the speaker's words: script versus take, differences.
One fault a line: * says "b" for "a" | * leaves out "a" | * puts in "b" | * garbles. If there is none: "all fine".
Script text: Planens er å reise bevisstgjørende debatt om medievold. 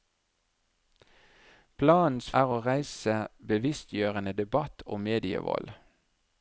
all fine